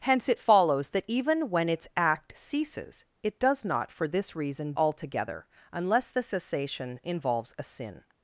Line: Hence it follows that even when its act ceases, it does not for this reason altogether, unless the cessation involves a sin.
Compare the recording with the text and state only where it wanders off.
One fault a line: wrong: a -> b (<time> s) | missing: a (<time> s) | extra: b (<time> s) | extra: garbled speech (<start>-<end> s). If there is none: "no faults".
no faults